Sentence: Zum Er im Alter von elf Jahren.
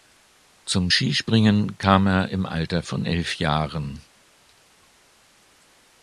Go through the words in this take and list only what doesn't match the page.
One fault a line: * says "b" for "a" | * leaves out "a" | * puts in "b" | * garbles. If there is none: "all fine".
* puts in "Skispringen kam"